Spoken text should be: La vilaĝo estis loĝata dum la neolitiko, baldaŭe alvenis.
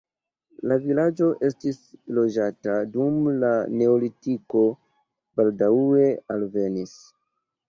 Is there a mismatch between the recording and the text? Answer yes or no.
no